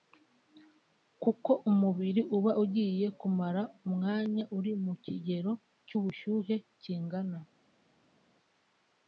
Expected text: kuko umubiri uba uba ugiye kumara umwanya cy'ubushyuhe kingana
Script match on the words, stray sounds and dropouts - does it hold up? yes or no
no